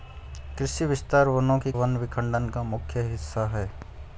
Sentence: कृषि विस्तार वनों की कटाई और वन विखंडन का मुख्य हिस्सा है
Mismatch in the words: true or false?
true